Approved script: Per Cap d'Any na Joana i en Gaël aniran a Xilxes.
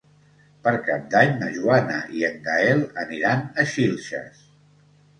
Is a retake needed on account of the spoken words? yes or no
no